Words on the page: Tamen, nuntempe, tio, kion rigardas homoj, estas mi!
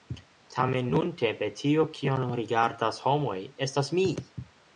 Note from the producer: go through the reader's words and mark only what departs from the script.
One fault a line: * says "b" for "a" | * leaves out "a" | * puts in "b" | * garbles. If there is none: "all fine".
all fine